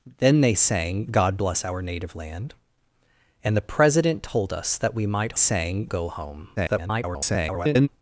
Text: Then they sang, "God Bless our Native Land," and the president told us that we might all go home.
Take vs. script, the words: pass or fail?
fail